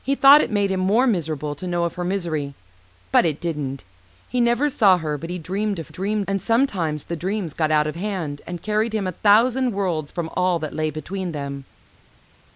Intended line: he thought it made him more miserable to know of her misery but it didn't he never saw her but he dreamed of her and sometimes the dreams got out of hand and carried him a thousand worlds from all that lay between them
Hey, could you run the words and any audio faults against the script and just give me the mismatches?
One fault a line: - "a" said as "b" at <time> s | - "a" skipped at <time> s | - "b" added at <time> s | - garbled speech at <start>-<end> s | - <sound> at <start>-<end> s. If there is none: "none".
- "her" said as "dreamed" at 5.9 s